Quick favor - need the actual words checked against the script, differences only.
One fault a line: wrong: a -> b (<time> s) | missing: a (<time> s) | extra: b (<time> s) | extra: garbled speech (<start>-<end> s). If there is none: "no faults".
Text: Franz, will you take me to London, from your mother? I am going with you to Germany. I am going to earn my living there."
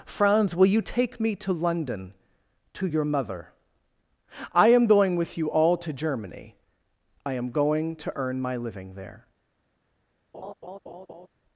wrong: from -> to (2.7 s)
extra: all (5.5 s)